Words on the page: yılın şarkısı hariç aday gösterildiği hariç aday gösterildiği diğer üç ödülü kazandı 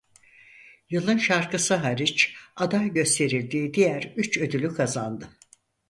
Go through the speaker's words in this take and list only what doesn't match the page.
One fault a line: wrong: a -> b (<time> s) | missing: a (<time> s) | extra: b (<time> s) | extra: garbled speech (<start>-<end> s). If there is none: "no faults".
missing: hariç aday gösterildiği (3.7 s)